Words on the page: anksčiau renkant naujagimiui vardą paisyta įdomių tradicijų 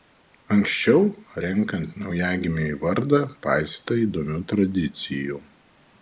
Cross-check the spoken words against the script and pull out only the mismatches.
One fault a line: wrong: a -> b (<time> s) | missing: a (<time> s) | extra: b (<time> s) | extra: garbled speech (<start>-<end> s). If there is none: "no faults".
no faults